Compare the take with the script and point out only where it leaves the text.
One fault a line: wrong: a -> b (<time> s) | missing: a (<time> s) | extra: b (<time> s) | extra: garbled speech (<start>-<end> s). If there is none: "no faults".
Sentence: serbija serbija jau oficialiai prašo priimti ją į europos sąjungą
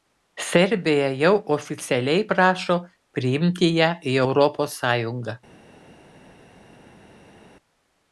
missing: serbija (1.1 s)